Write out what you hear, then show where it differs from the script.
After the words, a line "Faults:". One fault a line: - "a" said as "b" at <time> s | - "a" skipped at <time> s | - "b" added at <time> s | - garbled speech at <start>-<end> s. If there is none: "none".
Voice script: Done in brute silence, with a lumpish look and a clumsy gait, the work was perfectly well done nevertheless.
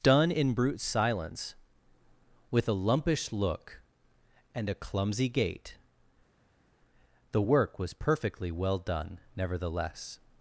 Done in brute silence, with a lumpish look and a clumsy gait, the work was perfectly well done nevertheless.
Faults:
none